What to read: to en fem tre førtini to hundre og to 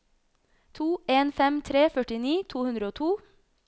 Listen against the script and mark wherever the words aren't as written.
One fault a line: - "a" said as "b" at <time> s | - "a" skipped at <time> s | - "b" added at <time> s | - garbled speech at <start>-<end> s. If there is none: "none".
none